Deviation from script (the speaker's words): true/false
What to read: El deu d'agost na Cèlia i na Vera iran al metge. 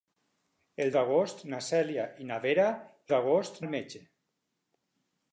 true